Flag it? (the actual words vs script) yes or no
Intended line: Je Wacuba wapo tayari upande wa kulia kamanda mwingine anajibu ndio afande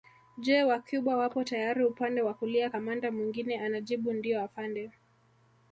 no